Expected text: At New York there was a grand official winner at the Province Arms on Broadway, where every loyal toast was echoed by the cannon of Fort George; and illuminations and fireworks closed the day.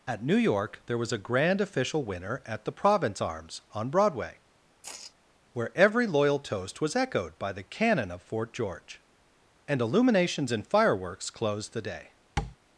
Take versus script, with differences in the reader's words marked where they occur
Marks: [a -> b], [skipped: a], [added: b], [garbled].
At New York there was a grand official winner at the Province Arms on Broadway, where every loyal toast was echoed by the cannon of Fort George; and illuminations and fireworks closed the day.